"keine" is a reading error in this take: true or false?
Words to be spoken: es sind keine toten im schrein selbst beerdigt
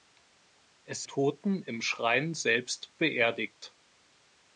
true